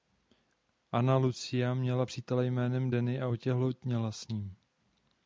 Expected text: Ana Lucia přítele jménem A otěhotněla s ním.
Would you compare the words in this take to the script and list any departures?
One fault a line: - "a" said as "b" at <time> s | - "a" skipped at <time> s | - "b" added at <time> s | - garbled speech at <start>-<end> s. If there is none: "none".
- "měla" added at 1.7 s
- "Danny" added at 2.9 s